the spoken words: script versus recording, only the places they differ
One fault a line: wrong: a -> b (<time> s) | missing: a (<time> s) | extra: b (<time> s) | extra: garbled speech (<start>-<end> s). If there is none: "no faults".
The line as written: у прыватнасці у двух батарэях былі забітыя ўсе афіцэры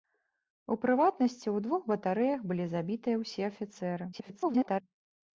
extra: garbled speech (4.1-4.8 s)